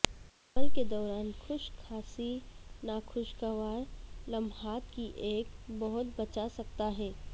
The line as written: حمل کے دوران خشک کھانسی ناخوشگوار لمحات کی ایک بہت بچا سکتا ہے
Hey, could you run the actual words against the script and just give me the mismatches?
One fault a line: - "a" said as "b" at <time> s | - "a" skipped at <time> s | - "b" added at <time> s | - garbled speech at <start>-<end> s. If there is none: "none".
none